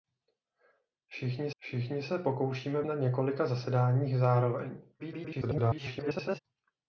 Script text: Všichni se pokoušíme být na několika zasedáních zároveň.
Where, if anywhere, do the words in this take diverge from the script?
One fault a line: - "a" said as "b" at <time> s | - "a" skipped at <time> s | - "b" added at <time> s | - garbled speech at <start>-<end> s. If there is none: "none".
- "všichni" added at 1.6 s
- "být" skipped at 2.8 s
- garbled speech at 5.0-6.4 s